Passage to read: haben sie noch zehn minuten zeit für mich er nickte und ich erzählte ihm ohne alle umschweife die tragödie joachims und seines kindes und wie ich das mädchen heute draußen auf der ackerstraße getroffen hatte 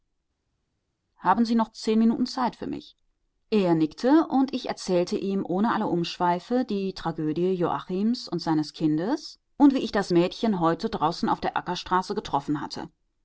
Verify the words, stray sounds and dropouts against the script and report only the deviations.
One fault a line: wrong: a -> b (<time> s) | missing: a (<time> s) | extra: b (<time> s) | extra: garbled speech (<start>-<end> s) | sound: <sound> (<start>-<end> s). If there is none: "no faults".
no faults